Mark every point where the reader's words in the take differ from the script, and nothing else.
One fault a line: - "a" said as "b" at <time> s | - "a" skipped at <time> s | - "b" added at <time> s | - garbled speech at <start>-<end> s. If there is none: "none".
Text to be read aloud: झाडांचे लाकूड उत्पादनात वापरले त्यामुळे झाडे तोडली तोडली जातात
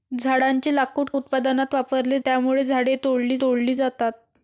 none